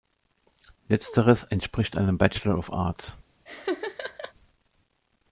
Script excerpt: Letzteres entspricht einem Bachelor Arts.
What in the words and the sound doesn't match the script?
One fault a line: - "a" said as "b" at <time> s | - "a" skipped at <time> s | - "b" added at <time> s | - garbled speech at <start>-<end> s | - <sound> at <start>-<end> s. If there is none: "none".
- "of" added at 2.6 s
- laugh at 3.5-4.3 s